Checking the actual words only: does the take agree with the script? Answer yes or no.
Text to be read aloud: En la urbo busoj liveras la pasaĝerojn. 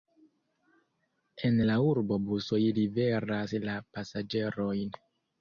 yes